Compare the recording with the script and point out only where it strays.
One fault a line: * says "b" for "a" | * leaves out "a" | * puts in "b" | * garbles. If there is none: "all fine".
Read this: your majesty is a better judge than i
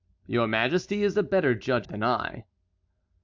all fine